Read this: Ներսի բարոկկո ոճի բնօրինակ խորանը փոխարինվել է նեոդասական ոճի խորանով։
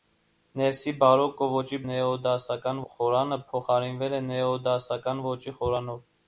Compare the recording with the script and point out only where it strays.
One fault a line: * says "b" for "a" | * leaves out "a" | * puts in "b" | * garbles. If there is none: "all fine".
* says "նեոդասական" for "բնօրինակ"